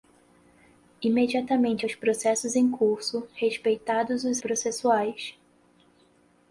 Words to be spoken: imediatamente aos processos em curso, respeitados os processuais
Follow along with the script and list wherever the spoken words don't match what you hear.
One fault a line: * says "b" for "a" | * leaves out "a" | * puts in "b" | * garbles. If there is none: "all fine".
all fine